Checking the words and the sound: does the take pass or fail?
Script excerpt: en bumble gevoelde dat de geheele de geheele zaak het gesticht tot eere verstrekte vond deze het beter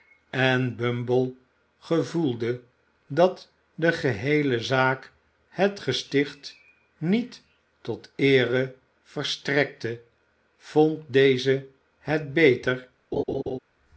fail